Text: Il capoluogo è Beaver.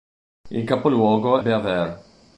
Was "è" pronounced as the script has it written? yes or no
no